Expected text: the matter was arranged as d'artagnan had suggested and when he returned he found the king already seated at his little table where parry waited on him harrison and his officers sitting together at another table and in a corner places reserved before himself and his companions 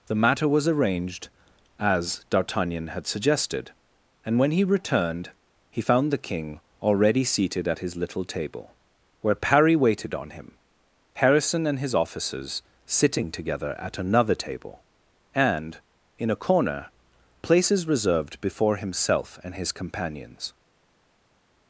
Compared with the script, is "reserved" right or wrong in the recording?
right